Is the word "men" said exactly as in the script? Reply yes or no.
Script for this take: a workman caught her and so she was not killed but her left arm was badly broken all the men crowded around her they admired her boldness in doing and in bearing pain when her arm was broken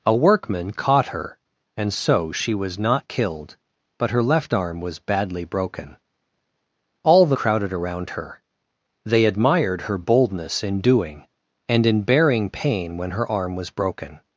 no